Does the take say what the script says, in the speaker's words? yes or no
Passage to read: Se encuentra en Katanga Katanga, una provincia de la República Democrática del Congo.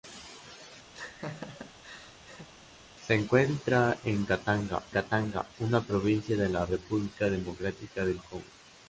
yes